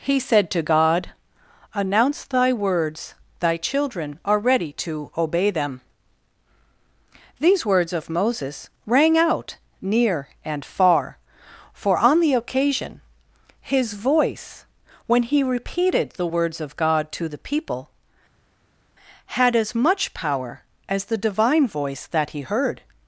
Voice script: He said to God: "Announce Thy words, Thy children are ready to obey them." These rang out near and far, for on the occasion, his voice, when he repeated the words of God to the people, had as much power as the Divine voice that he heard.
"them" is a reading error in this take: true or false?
false